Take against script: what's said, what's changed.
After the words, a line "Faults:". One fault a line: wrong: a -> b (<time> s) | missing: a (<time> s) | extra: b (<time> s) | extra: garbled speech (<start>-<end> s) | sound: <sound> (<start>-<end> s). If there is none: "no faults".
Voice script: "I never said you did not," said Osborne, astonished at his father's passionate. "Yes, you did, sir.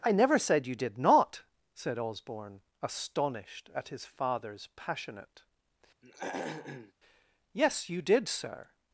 "I never said you did not," said Osborne, astonished at his father's passionate. "Yes, you did, sir.
Faults:
sound: throat clearing (6.0-6.9 s)